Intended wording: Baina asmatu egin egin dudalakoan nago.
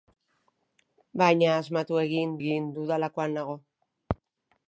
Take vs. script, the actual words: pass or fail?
pass